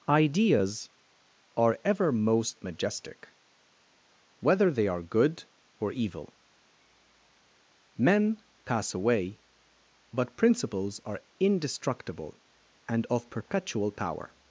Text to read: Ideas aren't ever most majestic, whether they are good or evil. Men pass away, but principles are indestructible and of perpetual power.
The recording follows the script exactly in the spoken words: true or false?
false